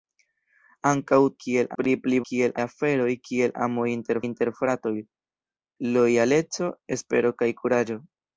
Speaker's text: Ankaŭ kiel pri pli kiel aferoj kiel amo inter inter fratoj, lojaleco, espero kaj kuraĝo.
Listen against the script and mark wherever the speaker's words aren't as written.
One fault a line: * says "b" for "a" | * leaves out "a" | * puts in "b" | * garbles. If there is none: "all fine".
all fine